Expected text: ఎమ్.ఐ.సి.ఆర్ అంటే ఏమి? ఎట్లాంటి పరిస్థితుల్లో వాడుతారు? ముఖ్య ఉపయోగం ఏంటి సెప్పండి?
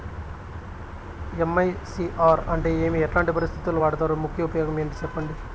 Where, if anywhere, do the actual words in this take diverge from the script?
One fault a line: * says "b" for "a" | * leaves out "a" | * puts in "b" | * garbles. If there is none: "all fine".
all fine